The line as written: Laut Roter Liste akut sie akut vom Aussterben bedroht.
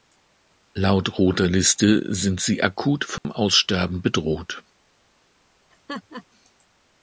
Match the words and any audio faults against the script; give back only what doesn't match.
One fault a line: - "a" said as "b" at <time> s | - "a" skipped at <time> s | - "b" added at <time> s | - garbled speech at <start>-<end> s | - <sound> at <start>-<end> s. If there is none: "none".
- "akut" said as "sind" at 2.1 s
- dropout at 3.2-3.2 s
- laugh at 5.7-6.2 s